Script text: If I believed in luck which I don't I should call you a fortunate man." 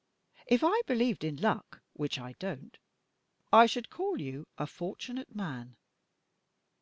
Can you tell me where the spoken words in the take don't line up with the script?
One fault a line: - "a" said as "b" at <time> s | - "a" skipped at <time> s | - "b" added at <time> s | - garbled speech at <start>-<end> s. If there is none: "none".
none